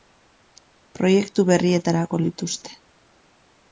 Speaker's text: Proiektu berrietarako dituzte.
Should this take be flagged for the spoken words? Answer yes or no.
no